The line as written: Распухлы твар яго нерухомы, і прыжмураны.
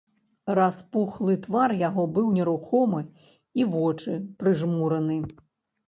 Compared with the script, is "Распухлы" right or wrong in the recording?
right